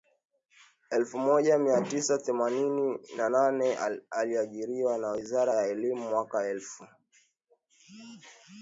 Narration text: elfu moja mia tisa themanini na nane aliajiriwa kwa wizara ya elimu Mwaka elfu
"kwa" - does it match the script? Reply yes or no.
no